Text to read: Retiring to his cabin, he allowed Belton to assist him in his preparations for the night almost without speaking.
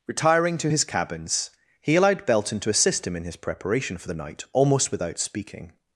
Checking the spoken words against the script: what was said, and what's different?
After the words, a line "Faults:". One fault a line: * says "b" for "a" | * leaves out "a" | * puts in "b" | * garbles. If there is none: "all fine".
Retiring to his cabins, he allowed Belton to assist him in his preparation for the night almost without speaking.
Faults:
* says "cabins" for "cabin"
* says "preparation" for "preparations"